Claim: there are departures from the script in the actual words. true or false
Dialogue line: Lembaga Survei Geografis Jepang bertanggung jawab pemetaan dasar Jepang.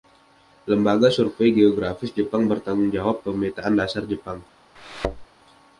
false